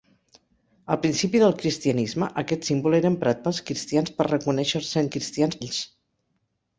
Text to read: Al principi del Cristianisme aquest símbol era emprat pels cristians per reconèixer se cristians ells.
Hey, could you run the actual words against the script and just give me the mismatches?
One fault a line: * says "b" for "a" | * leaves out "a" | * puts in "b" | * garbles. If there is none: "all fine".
all fine